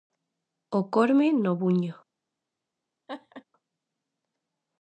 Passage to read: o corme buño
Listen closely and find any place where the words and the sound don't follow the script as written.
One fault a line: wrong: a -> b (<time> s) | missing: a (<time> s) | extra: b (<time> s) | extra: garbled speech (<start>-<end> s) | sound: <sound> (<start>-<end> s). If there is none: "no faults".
extra: no (1.3 s)
sound: laugh (3.1-3.4 s)